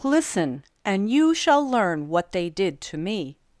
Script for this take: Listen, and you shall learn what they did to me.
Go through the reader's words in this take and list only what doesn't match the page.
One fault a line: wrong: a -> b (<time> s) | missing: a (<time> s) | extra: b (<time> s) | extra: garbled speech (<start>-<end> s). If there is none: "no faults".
no faults